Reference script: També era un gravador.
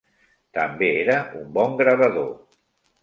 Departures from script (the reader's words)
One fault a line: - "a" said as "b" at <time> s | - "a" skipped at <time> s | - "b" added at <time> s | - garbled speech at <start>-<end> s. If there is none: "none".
- "bon" added at 1.6 s